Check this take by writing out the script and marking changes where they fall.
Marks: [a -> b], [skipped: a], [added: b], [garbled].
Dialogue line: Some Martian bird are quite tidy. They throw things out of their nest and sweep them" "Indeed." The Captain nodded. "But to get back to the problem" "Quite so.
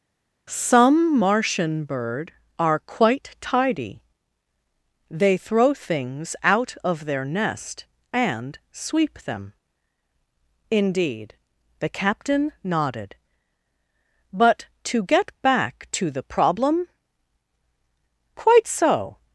Some Martian bird are quite tidy. They throw things out of their nest and sweep them" "Indeed." The Captain nodded. "But to get back to the problem" "Quite so.